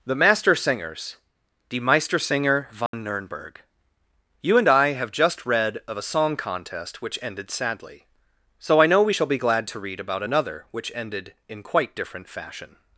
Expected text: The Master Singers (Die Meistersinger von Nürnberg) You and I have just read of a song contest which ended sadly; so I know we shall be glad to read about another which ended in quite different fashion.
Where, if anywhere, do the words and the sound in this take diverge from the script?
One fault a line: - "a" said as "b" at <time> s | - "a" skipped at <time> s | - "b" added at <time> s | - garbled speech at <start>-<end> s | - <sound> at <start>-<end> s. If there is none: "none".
- dropout at 2.9-2.9 s